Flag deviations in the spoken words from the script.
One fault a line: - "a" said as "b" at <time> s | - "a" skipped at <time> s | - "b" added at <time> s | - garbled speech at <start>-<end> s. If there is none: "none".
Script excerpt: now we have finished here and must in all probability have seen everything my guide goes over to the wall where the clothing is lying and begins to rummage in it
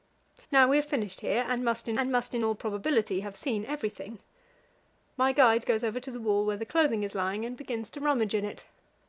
- "and must in" added at 2.0 s